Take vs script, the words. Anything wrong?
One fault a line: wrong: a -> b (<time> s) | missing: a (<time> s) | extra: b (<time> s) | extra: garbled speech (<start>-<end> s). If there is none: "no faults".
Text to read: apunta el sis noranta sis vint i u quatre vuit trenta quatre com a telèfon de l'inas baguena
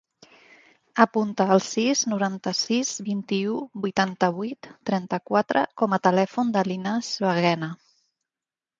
wrong: quatre -> vuitanta (3.8 s)